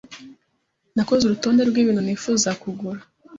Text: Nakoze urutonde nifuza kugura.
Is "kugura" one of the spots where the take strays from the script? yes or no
no